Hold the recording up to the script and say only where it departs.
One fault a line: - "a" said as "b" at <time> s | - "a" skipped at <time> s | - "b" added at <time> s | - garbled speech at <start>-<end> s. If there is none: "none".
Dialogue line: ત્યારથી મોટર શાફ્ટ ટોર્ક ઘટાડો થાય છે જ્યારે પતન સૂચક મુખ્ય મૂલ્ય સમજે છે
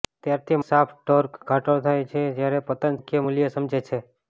- "મોટર" skipped at 0.6 s
- "સૂચક" skipped at 3.0 s